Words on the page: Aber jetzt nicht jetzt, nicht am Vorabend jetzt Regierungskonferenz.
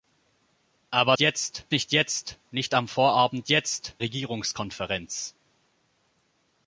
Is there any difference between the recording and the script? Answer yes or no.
no